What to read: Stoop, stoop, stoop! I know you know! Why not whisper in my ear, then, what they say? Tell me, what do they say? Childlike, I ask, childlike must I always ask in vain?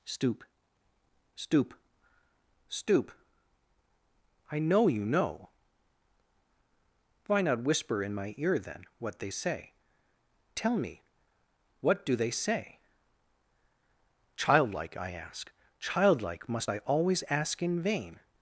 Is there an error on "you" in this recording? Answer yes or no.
no